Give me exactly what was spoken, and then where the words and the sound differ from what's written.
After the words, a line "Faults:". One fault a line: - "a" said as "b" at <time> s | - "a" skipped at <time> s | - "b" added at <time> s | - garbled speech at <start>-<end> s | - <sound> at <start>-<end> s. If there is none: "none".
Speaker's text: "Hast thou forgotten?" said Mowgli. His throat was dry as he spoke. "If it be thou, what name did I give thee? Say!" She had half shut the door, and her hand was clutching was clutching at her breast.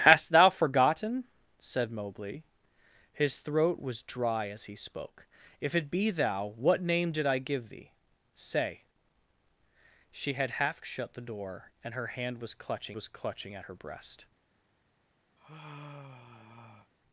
"Hast thou forgotten?" said Mowgli. His throat was dry as he spoke. "If it be thou, what name did I give thee? Say!" She had half shut the door, and her hand was clutching was clutching at her breast.
Faults:
- sigh at 15.4-16.9 s